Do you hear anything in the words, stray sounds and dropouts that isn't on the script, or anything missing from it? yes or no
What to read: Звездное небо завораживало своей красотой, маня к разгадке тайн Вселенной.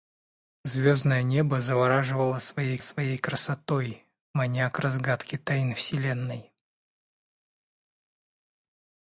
yes